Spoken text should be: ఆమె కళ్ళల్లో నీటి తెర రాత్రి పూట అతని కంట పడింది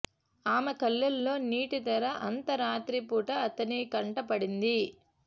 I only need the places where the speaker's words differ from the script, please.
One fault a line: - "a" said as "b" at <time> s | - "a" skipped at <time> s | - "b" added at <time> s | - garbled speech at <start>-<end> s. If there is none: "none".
- "అంత" added at 2.3 s